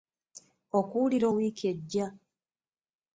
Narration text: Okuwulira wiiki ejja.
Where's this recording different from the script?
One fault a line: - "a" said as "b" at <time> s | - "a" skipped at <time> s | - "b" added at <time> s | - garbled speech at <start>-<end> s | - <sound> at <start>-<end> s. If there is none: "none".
none